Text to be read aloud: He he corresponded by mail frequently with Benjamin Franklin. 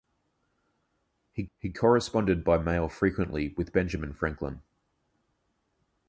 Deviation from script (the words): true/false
false